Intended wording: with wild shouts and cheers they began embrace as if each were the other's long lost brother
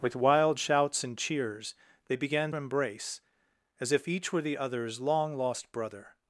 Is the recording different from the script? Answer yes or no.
no